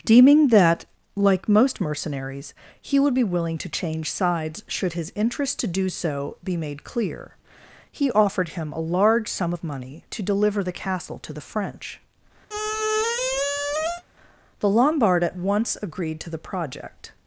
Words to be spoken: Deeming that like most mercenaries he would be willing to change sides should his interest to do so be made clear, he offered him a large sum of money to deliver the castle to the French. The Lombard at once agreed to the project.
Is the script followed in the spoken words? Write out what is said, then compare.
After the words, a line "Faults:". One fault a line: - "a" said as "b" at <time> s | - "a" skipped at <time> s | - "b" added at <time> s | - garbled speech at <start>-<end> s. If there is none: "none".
Deeming that like most mercenaries he would be willing to change sides should his interest to do so be made clear, he offered him a large sum of money to deliver the castle to the French. The Lombard at once agreed to the project.
Faults:
none